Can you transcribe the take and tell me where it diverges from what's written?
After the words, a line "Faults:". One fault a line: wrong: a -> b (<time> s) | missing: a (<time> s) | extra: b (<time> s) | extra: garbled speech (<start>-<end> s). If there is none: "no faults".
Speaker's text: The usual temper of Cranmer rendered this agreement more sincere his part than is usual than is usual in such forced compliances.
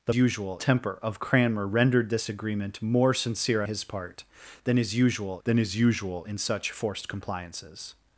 The usual temper of Cranmer rendered this agreement more sincere his part than is usual than is usual in such forced compliances.
Faults:
no faults